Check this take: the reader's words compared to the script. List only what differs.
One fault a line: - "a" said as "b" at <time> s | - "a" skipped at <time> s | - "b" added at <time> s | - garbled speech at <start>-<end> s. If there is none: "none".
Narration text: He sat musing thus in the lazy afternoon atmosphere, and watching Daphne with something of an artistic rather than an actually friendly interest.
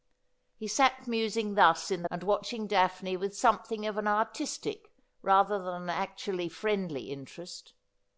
- "lazy afternoon atmosphere" skipped at 2.1 s